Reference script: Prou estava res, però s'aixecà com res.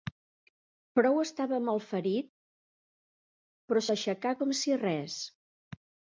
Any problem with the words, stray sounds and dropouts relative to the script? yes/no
yes